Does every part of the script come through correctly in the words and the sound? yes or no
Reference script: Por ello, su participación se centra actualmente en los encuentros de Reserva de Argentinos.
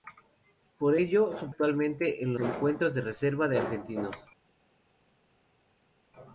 no